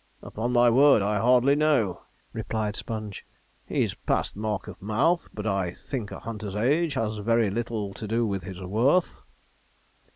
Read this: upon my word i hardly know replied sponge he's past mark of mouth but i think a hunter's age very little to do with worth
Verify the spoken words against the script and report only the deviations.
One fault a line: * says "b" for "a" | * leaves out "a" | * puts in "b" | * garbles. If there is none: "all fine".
* puts in "has"
* puts in "his"